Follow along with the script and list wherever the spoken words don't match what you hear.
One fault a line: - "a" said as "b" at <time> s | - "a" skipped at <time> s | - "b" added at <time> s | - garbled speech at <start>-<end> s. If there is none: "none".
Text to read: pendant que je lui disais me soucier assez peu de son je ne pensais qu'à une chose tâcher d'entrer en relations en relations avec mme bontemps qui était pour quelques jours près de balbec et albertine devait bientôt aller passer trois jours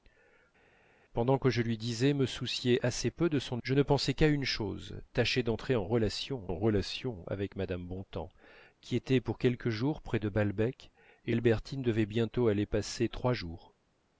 none